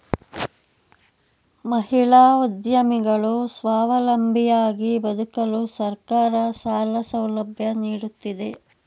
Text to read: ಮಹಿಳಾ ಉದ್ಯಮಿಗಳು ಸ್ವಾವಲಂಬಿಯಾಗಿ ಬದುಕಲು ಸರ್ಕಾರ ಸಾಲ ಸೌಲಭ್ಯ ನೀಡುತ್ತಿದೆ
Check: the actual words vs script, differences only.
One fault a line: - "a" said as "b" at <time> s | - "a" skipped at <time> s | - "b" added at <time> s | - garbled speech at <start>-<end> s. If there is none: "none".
none